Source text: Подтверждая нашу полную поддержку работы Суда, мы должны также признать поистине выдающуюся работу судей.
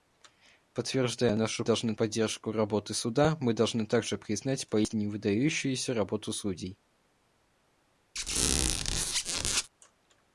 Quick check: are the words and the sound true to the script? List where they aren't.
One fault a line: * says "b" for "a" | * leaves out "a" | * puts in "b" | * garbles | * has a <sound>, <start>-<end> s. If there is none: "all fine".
* says "должны" for "полную"
* has a squeak, 8.2-9.7 s